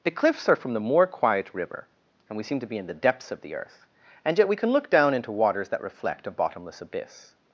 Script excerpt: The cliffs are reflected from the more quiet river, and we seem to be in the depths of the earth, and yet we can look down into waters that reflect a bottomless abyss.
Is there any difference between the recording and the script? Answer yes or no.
yes